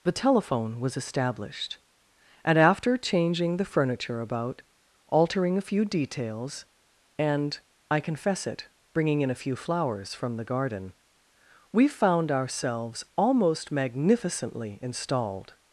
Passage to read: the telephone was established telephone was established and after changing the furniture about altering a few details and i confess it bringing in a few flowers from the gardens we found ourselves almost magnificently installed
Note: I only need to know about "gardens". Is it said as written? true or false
false